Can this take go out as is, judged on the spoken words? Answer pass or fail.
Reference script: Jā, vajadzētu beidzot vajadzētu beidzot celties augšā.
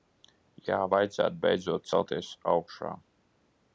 fail